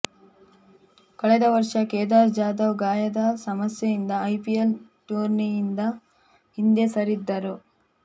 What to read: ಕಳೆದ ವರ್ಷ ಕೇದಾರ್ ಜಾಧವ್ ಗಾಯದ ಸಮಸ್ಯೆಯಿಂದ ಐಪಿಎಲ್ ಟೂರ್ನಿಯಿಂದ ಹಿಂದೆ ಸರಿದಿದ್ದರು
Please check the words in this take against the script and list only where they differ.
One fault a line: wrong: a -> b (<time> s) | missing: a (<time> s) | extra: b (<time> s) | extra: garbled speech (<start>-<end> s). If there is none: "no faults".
no faults